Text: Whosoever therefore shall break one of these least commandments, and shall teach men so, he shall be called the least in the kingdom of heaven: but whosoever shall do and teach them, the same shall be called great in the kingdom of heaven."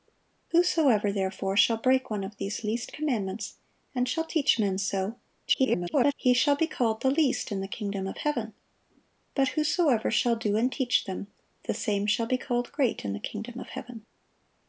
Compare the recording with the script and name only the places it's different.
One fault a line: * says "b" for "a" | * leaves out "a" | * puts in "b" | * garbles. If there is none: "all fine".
* garbles